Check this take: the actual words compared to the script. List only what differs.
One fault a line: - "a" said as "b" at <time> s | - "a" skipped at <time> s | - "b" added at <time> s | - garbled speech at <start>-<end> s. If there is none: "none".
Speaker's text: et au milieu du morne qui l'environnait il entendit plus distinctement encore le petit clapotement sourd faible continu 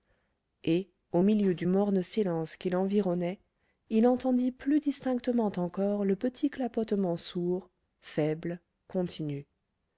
- "silence" added at 2.0 s